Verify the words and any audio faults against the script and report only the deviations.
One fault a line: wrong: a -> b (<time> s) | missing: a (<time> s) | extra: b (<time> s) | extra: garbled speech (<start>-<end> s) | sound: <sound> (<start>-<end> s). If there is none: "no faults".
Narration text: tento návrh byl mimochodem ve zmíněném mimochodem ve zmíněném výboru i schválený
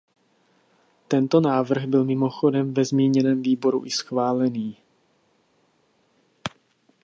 missing: mimochodem ve zmíněném (3.4 s)